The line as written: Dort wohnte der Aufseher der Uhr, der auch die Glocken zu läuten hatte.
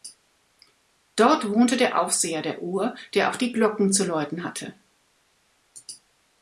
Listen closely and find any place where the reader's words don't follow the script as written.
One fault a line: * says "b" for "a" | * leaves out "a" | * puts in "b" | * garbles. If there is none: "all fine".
all fine